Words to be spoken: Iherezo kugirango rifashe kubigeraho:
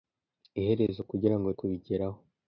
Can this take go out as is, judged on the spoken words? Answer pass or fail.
fail